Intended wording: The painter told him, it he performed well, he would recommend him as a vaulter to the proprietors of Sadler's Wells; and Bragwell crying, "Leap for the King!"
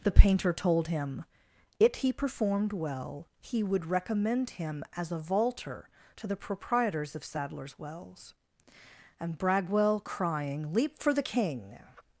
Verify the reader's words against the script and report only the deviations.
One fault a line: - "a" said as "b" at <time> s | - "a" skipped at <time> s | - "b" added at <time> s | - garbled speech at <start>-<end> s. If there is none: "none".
none